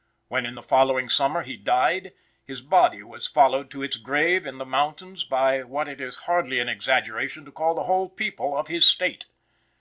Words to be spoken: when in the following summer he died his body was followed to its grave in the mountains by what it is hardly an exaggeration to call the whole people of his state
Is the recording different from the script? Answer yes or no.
no